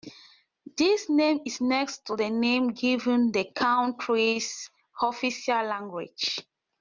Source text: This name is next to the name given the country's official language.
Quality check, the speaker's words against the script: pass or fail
pass